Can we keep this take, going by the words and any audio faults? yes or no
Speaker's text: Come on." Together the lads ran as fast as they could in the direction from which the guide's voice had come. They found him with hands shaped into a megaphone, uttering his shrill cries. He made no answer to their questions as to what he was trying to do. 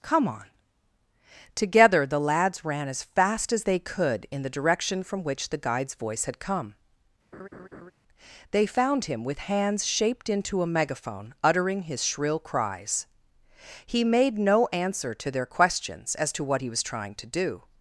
no